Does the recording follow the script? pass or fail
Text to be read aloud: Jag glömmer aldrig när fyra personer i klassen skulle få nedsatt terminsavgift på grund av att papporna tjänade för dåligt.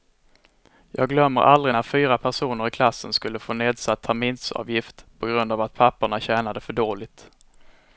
pass